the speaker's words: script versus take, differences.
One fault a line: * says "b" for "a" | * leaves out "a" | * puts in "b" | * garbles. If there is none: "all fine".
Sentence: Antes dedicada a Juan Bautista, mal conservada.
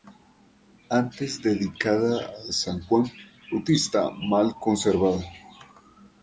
* puts in "san"